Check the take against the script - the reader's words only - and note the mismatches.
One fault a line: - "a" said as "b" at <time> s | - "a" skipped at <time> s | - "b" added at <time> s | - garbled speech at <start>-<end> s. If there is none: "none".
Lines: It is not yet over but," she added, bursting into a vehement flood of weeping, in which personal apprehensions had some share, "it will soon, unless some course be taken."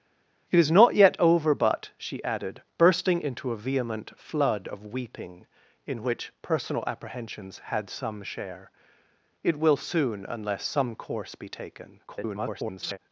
- garbled speech at 12.1-13.0 s